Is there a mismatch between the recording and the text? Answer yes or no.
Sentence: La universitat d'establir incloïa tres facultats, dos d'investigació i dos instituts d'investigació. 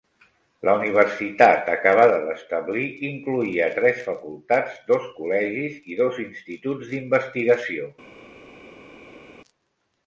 yes